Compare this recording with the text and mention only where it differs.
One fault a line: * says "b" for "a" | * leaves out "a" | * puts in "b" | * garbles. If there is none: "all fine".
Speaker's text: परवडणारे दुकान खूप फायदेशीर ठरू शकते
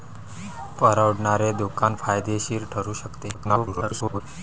* leaves out "खूप"
* garbles